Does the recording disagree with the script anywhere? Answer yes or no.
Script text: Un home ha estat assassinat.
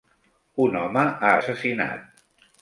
yes